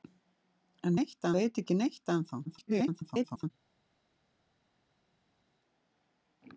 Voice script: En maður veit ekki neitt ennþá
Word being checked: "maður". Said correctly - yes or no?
no